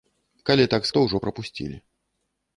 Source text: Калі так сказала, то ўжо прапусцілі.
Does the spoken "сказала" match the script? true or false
false